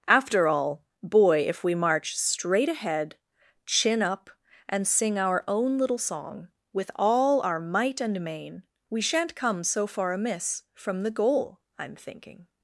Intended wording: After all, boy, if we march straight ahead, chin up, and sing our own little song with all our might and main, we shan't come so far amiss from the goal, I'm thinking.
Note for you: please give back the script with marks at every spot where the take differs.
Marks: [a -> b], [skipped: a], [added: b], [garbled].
After all, boy, if we march straight ahead, chin up, and sing our own little song with all our might and main, we shan't come so far amiss from the goal, I'm thinking.